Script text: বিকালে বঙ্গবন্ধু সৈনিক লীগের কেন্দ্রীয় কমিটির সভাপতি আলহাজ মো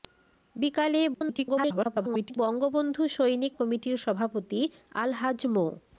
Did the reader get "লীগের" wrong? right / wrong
wrong